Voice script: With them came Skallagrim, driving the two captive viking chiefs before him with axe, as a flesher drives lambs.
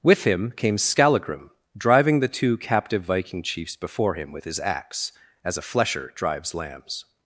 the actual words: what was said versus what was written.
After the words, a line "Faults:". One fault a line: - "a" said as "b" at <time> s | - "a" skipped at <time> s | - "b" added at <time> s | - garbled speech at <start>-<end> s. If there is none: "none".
With him came Skallagrim, driving the two captive viking chiefs before him with his axe, as a flesher drives lambs.
Faults:
- "them" said as "him" at 0.2 s
- "his" added at 4.5 s